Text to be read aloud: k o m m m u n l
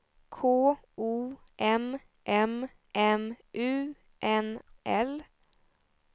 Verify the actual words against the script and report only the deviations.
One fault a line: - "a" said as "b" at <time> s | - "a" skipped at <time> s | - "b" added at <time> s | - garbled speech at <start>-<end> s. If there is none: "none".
none